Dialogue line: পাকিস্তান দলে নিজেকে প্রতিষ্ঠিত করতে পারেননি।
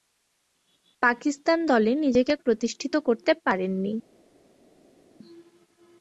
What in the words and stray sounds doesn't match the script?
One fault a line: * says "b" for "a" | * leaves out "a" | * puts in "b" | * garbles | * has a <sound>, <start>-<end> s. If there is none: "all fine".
all fine